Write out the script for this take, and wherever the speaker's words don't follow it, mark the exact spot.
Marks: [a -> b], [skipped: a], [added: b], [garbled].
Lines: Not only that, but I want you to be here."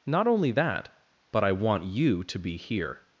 Not only that, but I want you to be here."